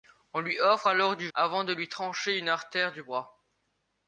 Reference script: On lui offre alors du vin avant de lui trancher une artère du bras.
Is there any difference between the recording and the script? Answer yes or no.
yes